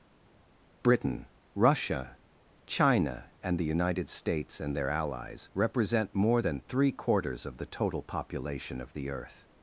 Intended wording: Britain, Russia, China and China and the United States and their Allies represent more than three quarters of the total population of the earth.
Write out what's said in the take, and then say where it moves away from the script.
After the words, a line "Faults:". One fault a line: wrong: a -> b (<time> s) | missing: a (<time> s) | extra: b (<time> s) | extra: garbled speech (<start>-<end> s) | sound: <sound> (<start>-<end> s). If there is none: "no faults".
Britain, Russia, China and the United States and their Allies represent more than three quarters of the total population of the earth.
Faults:
missing: China and (3.6 s)